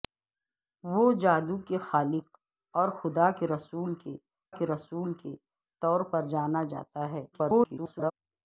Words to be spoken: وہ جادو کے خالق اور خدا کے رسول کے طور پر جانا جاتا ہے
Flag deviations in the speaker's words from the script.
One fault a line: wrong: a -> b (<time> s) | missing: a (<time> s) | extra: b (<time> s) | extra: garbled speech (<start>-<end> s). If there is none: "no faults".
extra: کے رسول کے (4.5 s)
extra: garbled speech (7.3-8.1 s)